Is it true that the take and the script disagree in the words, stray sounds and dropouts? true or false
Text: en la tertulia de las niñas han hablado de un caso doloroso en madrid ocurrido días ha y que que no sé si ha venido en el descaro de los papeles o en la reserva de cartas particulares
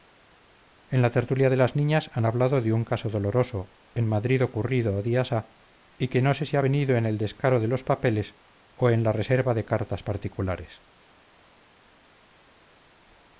true